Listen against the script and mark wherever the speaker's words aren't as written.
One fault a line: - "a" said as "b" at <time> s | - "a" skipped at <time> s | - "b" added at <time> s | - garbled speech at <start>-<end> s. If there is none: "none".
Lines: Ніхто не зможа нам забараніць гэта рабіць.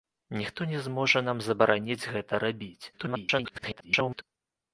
- garbled speech at 2.9-4.2 s